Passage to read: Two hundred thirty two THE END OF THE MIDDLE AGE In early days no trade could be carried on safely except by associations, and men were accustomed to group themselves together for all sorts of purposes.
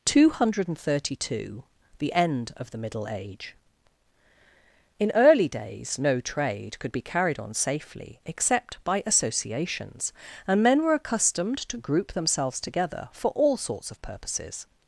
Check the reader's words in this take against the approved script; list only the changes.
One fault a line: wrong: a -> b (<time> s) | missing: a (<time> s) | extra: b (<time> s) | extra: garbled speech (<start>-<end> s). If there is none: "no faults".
no faults